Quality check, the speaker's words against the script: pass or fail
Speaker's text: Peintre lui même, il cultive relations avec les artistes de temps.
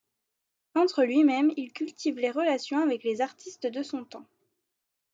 fail